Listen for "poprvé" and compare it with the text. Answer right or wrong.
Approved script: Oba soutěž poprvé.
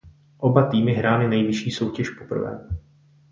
right